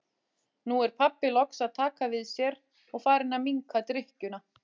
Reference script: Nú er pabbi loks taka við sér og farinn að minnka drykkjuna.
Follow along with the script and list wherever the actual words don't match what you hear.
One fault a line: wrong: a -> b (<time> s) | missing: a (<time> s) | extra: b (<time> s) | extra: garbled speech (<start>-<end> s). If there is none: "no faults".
extra: að (1.6 s)